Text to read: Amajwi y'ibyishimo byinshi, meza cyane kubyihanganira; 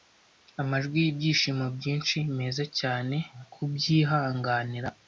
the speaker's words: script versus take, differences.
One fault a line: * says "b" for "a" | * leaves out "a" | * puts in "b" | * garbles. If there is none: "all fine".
all fine